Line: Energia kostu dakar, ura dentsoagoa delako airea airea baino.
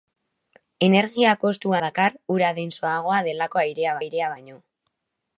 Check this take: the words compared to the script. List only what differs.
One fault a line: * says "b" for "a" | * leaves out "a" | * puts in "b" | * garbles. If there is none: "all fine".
all fine